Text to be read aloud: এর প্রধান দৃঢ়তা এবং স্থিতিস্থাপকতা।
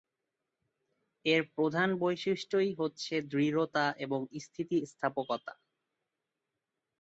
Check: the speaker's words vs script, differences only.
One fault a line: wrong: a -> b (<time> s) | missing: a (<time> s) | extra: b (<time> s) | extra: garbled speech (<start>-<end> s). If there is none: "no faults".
extra: বৈশিষ্ট্যই হচ্ছে (2.0 s)